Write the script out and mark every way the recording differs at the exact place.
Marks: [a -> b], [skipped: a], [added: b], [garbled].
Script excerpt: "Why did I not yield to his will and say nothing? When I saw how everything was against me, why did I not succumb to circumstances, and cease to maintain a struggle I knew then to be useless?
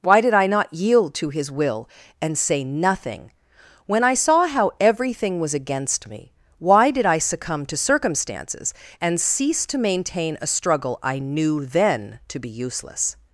"Why did I not yield to his will and say nothing? When I saw how everything was against me, why did I [skipped: not] succumb to circumstances, and cease to maintain a struggle I knew then to be useless?